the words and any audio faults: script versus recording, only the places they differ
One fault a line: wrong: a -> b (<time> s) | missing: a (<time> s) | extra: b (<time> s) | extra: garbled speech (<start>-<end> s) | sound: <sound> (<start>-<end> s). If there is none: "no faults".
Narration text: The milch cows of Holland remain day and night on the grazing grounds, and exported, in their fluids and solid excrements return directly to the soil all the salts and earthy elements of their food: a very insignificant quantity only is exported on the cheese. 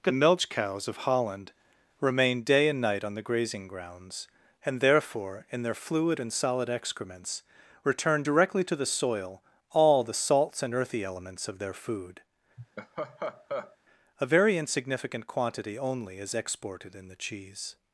wrong: exported -> therefore (4.8 s)
wrong: fluids -> fluid (5.8 s)
sound: laugh (12.6-13.8 s)
wrong: on -> in (17.0 s)